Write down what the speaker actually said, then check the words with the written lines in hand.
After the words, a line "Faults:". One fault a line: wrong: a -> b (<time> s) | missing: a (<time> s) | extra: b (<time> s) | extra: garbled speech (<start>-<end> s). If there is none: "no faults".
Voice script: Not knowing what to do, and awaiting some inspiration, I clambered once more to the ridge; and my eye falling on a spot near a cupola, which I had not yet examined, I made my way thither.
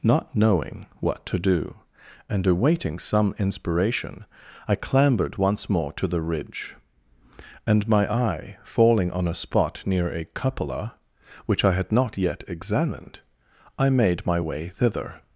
Not knowing what to do, and awaiting some inspiration, I clambered once more to the ridge; and my eye falling on a spot near a cupola, which I had not yet examined, I made my way thither.
Faults:
no faults